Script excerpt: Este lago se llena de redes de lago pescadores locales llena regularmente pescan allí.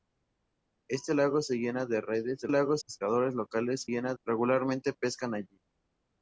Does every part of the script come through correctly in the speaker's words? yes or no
yes